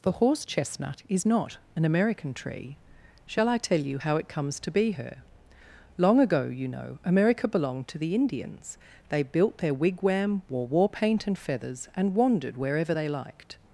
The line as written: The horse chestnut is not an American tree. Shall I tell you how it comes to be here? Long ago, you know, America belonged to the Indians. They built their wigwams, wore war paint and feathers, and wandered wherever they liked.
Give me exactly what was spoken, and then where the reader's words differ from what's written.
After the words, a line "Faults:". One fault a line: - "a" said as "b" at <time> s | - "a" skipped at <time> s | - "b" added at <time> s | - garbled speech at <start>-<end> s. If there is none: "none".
The horse chestnut is not an American tree. Shall I tell you how it comes to be her? Long ago, you know, America belonged to the Indians. They built their wigwam, wore war paint and feathers, and wandered wherever they liked.
Faults:
- "here" said as "her" at 4.9 s
- "wigwams" said as "wigwam" at 9.7 s